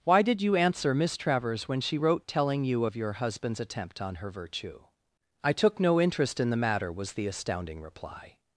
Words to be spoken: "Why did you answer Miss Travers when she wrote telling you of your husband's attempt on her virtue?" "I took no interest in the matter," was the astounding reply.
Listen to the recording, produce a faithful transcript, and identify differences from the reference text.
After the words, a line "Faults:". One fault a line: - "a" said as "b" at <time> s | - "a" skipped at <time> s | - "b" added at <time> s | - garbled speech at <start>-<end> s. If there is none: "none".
"Why did you answer Miss Travers when she wrote telling you of your husband's attempt on her virtue?" "I took no interest in the matter," was the astounding reply.
Faults:
none